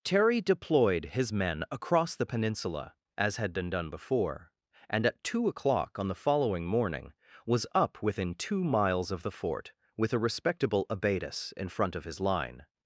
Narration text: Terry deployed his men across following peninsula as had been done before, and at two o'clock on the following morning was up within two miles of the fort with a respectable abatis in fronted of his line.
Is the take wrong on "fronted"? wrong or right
wrong